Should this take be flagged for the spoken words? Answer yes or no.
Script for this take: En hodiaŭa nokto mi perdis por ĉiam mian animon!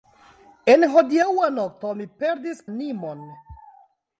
yes